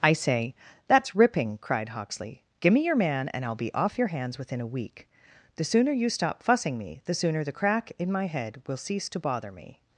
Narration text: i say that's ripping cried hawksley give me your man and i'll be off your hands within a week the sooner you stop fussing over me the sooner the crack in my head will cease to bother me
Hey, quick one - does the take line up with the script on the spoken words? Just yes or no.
no